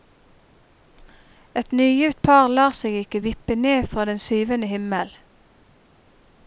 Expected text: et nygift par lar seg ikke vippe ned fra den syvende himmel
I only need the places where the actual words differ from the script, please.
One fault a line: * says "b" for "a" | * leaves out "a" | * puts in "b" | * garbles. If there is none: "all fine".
all fine